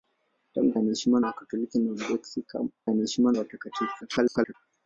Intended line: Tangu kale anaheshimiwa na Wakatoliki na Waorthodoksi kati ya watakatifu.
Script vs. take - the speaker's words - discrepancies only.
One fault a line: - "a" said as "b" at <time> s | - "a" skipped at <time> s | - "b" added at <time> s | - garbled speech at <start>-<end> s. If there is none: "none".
- "kale" skipped at 0.7 s
- "kati" said as "anaheshimiwa" at 2.9 s
- garbled speech at 4.0-4.6 s